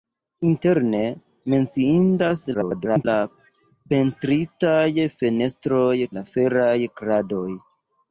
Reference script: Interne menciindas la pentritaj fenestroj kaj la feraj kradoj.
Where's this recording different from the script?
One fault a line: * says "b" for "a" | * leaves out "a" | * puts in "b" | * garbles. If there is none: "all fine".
* garbles
* leaves out "kaj"